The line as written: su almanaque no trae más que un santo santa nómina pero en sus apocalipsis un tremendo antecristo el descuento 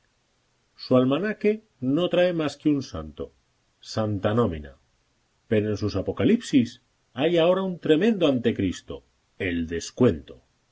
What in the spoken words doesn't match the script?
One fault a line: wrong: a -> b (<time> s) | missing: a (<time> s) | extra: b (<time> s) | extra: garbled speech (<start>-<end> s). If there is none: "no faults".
extra: hay ahora (7.1 s)